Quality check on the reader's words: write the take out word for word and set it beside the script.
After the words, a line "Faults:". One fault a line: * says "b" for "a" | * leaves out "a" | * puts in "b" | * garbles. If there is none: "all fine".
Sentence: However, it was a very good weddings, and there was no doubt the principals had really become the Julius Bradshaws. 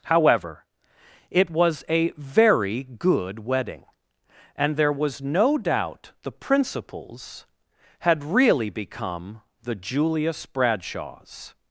However, it was a very good wedding, and there was no doubt the principals had really become the Julius Bradshaws.
Faults:
* says "wedding" for "weddings"